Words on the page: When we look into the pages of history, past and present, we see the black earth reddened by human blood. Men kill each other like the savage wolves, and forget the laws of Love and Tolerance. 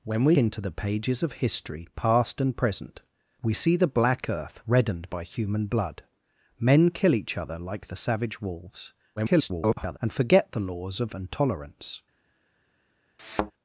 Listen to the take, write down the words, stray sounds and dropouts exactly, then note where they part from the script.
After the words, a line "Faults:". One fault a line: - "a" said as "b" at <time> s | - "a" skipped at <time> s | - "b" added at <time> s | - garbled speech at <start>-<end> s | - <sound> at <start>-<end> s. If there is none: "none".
When we into the pages of history, past and present, we see the black earth reddened by human blood. Men kill each other like the savage wolves, [garbled] and forget the laws of And Tolerance.
Faults:
- "look" skipped at 0.3 s
- garbled speech at 9.2-10.0 s
- "Love" skipped at 11.2 s
- thud at 13.2-13.5 s